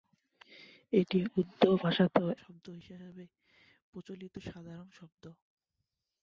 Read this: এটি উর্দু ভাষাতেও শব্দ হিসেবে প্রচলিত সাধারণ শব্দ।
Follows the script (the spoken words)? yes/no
yes